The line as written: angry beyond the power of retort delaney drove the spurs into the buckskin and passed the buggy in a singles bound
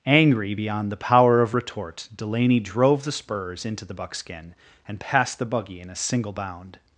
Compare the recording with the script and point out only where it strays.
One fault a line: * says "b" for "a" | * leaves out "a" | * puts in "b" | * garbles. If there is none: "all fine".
* says "single" for "singles"